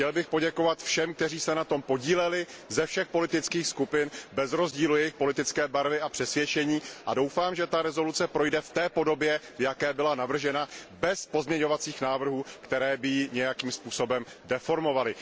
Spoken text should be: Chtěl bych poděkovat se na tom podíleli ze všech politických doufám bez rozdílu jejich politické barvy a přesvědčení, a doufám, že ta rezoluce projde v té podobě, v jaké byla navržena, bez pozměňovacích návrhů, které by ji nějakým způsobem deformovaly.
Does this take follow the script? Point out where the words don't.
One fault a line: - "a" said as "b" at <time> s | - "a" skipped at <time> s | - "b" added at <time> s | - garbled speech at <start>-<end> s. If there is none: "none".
- "všem kteří" added at 0.8 s
- "doufám" said as "skupin" at 3.7 s